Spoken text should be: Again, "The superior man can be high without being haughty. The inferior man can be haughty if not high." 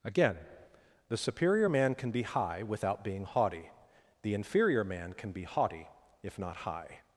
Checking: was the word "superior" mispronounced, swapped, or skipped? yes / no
no